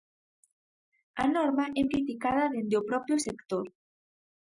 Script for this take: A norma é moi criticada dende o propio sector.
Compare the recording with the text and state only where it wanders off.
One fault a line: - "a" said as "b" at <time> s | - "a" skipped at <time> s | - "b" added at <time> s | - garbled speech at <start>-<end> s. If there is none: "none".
- "moi" skipped at 1.8 s